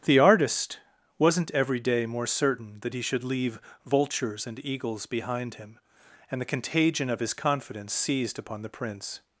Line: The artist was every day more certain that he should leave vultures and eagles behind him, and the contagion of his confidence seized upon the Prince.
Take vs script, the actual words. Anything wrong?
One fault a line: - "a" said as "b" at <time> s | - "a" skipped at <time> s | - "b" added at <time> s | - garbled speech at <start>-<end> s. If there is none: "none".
- "was" said as "wasn't" at 1.2 s